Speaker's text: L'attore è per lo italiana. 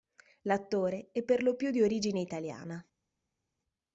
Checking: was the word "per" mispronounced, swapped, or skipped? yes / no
no